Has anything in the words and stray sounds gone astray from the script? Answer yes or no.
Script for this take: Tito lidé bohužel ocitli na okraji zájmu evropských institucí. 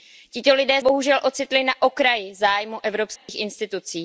yes